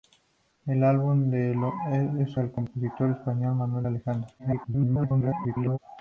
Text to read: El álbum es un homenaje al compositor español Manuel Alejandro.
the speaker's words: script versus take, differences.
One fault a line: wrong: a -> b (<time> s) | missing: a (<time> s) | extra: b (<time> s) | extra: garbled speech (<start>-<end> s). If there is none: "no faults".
missing: un homenaje (2.4 s)
extra: garbled speech (4.4-5.8 s)